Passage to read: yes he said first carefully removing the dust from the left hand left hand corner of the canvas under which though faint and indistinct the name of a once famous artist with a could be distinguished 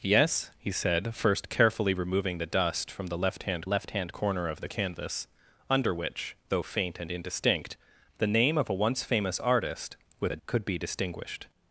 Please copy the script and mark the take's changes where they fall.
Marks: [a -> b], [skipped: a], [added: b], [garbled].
yes he said first carefully removing the dust from the left hand left hand corner of the canvas under which though faint and indistinct the name of a once famous artist with a could be distinguished